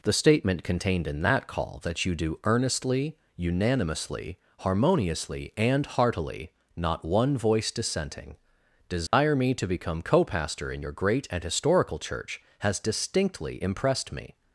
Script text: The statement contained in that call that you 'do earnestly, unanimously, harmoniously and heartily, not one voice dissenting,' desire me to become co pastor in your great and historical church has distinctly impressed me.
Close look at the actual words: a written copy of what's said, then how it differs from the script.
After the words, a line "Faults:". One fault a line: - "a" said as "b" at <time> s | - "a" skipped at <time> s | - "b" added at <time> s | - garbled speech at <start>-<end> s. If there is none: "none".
The statement contained in that call that you 'do earnestly, unanimously, harmoniously and heartily, not one voice dissenting,' desire me to become co pastor in your great and historical church has distinctly impressed me.
Faults:
none